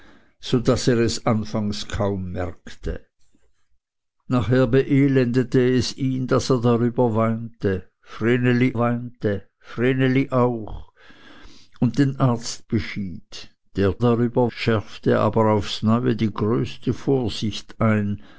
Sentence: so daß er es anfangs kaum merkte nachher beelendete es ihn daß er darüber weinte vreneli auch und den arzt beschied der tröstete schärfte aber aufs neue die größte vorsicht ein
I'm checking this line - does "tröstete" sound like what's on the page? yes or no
no